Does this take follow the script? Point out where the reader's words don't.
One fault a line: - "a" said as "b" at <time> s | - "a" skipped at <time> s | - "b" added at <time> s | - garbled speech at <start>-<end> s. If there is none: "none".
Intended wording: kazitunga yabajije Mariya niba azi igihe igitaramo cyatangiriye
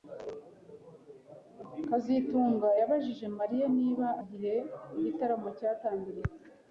- "azi" skipped at 4.1 s